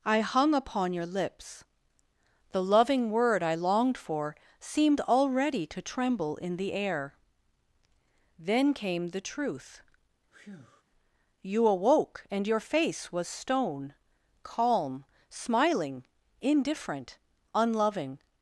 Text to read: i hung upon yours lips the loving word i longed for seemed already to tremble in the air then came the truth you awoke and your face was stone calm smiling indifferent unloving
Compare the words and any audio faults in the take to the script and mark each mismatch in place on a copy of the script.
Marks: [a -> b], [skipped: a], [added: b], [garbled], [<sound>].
i hung upon [yours -> your] lips the loving word i longed for seemed already to tremble in the air then came the truth [breath] you awoke and your face was stone calm smiling indifferent unloving